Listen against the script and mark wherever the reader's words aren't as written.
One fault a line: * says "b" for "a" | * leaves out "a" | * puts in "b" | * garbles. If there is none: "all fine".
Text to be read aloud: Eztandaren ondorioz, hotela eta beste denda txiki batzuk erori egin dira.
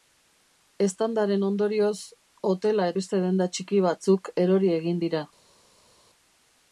* leaves out "eta"